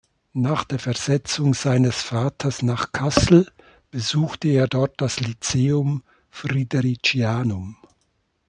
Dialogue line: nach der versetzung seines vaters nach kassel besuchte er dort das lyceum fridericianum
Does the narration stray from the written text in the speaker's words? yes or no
no